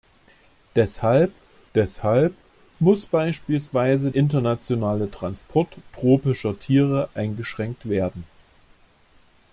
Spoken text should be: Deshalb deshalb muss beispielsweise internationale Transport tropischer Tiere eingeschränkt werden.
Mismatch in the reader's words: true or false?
false